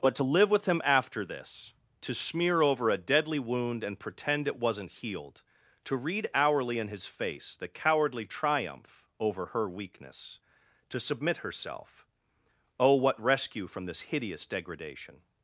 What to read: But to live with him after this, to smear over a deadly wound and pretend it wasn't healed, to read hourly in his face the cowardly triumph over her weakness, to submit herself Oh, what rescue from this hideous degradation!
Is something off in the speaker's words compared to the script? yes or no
no